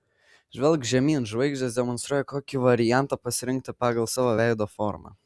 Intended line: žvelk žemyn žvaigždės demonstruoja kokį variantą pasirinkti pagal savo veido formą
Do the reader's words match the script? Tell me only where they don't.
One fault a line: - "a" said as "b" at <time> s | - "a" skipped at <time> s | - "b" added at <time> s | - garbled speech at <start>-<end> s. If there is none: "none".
none